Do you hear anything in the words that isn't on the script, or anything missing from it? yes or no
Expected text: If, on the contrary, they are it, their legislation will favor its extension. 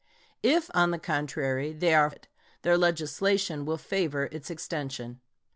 no